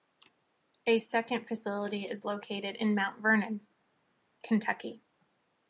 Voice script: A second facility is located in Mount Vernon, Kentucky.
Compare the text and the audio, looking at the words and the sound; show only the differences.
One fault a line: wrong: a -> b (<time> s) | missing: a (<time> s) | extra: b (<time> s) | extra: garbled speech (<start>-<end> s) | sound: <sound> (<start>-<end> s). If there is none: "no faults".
no faults